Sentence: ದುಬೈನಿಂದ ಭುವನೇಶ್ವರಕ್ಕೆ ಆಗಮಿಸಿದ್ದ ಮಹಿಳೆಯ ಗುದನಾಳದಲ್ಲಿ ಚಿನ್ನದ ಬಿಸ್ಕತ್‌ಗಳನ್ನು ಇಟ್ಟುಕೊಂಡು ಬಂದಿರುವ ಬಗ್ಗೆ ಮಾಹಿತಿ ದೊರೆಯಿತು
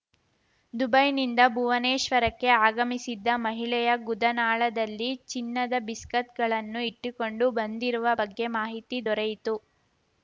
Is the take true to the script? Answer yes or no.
yes